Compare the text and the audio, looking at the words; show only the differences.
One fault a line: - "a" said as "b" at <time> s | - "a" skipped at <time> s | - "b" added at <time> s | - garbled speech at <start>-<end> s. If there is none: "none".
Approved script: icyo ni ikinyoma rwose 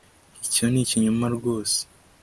none